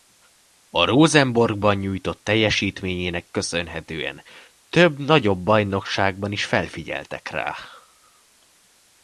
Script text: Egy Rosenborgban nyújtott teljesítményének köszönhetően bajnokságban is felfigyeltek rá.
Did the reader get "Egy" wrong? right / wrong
wrong